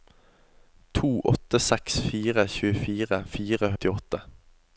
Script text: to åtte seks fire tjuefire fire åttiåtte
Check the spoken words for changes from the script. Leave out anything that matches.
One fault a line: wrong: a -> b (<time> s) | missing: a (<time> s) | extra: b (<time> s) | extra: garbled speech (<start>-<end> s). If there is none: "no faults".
no faults